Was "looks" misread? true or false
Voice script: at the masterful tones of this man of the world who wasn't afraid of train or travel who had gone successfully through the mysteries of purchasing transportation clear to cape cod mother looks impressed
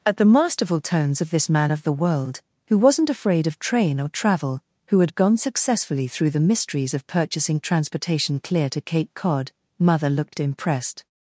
true